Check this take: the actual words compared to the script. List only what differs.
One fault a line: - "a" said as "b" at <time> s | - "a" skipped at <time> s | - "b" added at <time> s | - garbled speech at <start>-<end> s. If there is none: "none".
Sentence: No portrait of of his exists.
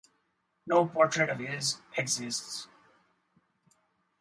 - "of" skipped at 1.4 s